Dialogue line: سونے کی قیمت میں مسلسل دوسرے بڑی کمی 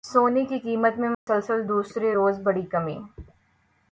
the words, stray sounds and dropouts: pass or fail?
fail